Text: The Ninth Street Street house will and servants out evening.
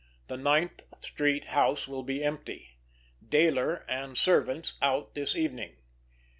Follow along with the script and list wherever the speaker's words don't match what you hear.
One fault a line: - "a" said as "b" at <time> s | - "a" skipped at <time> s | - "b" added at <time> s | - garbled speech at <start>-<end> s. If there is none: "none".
- "Street" skipped at 1.4 s
- "be empty Dayler" added at 2.0 s
- "this" added at 5.1 s